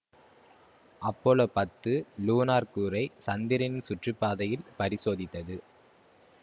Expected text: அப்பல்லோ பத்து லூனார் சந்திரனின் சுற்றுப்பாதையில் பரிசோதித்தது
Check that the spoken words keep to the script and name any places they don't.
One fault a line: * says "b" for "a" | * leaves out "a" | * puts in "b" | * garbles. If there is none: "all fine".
* puts in "கூறை"